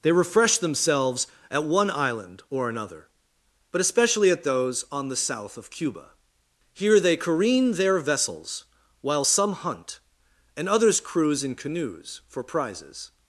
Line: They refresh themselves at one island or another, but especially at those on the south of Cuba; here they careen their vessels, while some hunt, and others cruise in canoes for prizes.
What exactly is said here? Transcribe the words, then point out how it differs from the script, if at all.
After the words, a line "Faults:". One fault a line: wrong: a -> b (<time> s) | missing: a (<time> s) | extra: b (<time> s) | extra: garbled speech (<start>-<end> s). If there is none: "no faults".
They refresh themselves at one island or another, but especially at those on the south of Cuba; here they careen their vessels, while some hunt, and others cruise in canoes for prizes.
Faults:
no faults